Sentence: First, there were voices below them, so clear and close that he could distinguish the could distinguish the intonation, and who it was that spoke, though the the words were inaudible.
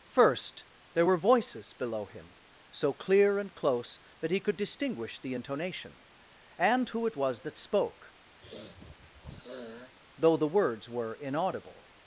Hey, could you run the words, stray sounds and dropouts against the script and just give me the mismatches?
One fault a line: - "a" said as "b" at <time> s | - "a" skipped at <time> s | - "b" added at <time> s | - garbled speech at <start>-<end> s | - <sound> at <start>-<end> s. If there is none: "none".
- "them" said as "him" at 2.0 s
- "could distinguish the" skipped at 5.3 s
- sniff at 8.4-9.9 s
- "the" skipped at 10.5 s